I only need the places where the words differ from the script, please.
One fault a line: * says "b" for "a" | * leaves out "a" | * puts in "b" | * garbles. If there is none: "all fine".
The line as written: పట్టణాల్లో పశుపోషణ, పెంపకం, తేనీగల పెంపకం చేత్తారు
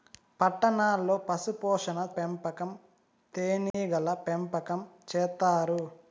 all fine